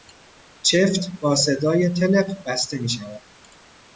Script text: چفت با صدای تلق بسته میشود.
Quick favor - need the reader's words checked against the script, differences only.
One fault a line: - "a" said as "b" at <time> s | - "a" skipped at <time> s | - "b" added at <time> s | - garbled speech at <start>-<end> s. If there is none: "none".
none